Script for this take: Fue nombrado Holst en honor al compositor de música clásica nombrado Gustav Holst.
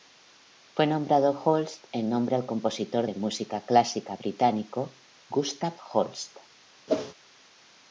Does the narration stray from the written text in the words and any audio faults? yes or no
yes